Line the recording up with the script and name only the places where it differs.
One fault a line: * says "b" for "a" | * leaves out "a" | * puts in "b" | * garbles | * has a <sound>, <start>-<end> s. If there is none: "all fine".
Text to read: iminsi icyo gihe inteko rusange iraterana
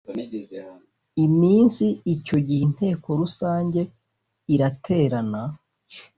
all fine